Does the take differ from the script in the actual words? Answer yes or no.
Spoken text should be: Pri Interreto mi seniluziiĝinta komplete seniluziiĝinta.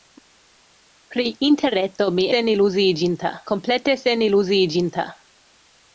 no